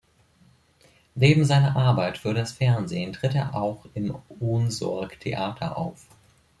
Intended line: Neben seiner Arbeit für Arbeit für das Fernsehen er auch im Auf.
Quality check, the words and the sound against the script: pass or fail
fail